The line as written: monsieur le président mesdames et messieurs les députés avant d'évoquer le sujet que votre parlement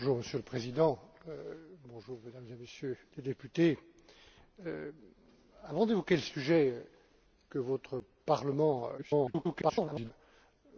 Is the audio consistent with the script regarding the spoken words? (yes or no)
no